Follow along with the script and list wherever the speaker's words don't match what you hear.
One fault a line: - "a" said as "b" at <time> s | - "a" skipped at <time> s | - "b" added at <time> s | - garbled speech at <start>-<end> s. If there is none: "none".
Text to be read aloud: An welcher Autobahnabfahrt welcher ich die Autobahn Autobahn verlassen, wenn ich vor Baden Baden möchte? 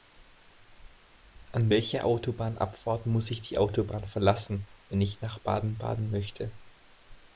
- "welcher" said as "muss" at 3.0 s
- "Autobahn" skipped at 4.1 s
- "vor" said as "nach" at 5.2 s